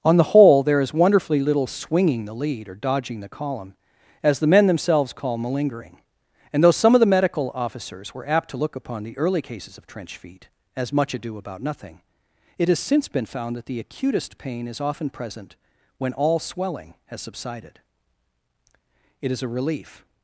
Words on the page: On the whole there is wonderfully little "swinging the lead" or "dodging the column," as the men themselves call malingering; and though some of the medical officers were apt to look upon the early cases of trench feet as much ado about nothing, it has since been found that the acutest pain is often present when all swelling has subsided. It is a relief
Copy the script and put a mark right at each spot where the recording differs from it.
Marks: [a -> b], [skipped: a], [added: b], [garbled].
On the whole there is wonderfully little "swinging the lead" or "dodging the column," as the men themselves call malingering; and though some of the medical officers were apt to look upon the early cases of trench feet as much ado about nothing, it has since been found that the acutest pain is often present when all swelling has subsided. It is a relief